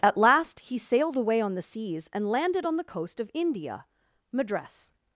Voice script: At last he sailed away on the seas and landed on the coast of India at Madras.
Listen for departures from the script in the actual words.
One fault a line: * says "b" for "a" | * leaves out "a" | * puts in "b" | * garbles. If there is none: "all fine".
* leaves out "at"